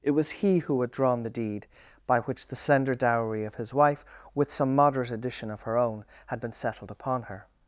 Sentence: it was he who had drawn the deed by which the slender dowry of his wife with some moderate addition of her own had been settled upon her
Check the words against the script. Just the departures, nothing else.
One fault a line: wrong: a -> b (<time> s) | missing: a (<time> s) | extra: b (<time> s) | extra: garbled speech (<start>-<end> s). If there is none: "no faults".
no faults